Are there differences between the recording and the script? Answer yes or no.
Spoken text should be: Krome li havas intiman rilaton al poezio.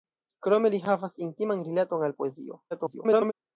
yes